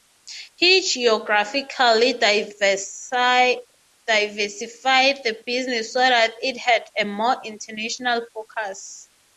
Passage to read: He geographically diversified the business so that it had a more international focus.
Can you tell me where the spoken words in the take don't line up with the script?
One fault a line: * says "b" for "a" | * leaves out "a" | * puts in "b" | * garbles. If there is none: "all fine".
all fine